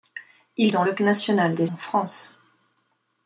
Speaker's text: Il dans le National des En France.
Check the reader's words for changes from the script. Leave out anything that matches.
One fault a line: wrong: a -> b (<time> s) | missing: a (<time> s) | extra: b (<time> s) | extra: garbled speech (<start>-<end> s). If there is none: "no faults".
no faults